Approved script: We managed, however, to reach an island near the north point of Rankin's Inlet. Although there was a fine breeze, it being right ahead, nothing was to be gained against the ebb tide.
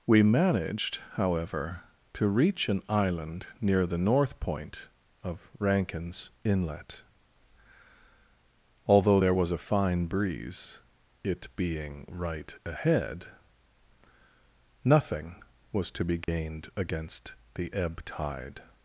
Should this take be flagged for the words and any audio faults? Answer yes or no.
yes